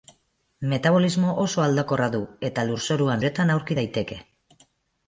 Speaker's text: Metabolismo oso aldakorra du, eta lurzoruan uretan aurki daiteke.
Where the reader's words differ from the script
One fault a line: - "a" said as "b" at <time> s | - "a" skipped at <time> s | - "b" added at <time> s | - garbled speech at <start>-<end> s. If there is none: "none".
none